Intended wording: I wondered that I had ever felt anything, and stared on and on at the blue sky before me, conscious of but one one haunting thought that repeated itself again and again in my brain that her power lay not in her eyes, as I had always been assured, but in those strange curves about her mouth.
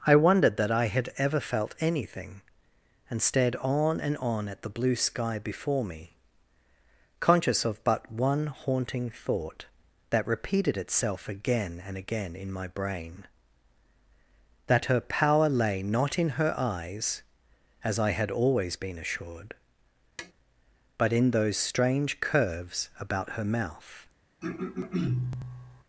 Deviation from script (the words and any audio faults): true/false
true